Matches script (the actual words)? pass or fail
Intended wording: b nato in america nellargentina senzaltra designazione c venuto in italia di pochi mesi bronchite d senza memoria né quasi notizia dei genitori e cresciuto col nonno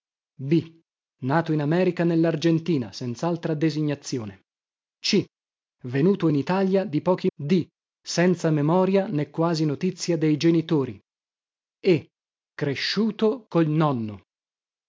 fail